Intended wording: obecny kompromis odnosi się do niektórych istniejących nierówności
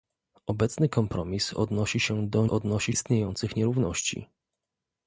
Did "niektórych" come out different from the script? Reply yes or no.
yes